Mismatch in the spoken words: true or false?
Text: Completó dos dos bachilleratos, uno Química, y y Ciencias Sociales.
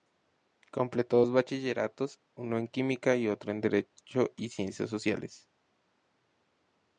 true